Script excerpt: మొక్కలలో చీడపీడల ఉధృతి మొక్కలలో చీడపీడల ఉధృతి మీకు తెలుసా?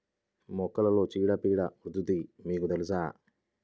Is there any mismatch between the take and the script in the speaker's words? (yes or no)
yes